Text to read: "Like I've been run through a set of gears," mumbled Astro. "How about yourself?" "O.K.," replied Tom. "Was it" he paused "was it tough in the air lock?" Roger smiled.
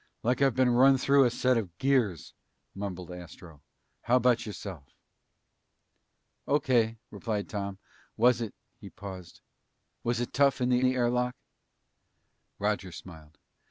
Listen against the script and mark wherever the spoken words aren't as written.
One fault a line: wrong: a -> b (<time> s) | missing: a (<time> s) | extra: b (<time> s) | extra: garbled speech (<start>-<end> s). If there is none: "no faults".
extra: the (10.8 s)